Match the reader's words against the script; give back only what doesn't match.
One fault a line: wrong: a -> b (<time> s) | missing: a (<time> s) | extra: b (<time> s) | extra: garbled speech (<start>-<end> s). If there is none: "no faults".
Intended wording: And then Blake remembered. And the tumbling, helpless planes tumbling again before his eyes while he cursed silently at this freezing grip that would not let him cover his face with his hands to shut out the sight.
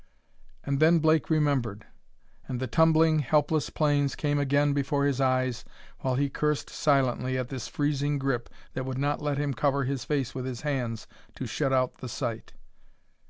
wrong: tumbling -> came (4.2 s)